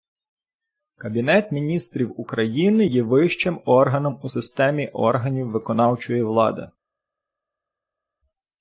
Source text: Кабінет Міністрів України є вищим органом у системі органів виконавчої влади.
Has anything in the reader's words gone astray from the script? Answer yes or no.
no